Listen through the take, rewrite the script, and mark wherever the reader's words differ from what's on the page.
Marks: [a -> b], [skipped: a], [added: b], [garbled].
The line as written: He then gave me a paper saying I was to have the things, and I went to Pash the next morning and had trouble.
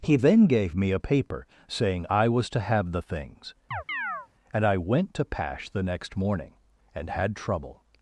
He then gave me a paper saying I was to have the things, and I went to Pash the next morning and had trouble.